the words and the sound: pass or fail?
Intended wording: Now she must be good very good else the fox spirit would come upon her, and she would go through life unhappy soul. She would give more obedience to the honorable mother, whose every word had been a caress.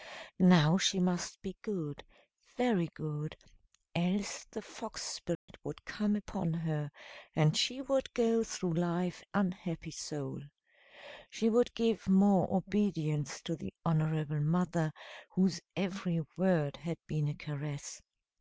fail